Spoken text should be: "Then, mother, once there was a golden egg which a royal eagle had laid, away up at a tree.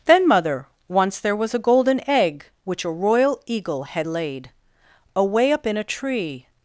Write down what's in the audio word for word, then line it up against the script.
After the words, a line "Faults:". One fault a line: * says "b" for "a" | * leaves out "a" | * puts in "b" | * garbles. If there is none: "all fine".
"Then, mother, once there was a golden egg which a royal eagle had laid, away up in a tree.
Faults:
* says "in" for "at"